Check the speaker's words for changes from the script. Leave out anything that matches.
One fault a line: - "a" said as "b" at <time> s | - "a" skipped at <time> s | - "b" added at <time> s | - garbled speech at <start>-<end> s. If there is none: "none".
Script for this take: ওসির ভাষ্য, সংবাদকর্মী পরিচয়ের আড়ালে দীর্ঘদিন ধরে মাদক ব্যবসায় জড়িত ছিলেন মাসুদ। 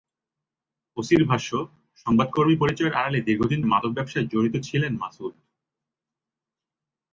- "ধরে" skipped at 3.6 s